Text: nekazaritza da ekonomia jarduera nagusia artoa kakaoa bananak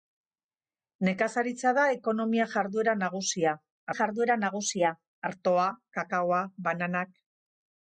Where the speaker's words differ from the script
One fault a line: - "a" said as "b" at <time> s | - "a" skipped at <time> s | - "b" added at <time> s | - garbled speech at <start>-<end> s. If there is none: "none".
- "jarduera nagusia" added at 4.0 s